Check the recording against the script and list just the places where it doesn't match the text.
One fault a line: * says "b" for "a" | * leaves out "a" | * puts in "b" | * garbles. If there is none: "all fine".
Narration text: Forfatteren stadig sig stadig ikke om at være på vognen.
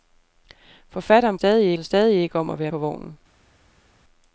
all fine